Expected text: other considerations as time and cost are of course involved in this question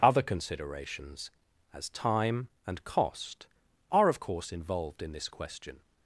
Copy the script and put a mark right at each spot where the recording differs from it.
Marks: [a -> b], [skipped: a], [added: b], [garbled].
other considerations as time and cost are of course involved in this question